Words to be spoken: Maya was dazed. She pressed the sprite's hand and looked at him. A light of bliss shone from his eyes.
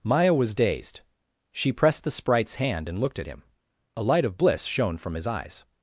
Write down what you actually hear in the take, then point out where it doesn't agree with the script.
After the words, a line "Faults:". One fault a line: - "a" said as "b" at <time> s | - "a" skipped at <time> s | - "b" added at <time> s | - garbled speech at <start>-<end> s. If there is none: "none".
Maya was dazed. She pressed the sprite's hand and looked at him. A light of bliss shone from his eyes.
Faults:
none